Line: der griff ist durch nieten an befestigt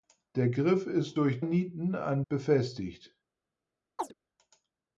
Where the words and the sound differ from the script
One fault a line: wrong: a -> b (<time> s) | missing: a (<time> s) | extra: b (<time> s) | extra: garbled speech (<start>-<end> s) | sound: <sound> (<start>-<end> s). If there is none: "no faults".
sound: chirp (4.0-4.1 s)